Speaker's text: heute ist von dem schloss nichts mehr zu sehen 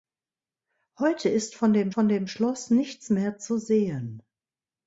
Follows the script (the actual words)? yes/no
no